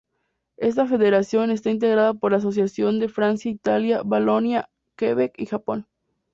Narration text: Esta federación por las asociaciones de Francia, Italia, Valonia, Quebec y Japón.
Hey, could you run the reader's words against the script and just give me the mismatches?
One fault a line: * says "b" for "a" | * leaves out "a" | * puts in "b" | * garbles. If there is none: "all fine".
* puts in "está integrada"